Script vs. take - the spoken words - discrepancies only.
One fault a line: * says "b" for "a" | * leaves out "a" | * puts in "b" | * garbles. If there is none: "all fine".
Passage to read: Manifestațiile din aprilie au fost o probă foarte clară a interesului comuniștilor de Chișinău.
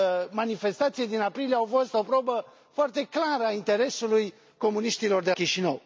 all fine